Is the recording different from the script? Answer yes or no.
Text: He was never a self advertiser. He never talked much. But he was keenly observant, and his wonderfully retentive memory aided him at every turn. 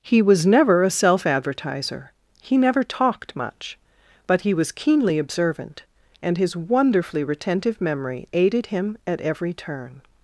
no